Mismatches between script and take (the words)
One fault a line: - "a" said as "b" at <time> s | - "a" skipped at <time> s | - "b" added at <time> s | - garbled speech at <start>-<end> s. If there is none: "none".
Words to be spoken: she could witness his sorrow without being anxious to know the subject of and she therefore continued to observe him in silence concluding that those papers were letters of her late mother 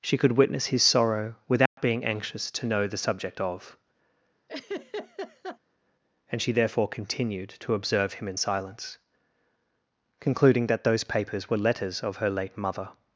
none